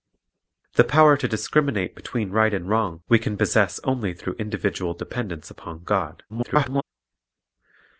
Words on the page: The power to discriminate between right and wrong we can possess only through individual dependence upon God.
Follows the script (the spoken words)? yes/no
no